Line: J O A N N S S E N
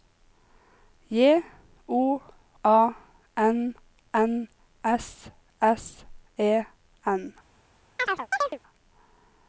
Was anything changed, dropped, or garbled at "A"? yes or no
no